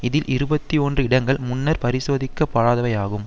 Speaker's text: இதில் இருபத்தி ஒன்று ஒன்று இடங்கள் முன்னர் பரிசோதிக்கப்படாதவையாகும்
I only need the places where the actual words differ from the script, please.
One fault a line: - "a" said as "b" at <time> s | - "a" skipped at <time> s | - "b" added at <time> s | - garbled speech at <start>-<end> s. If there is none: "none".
- "ஒன்று" skipped at 1.0 s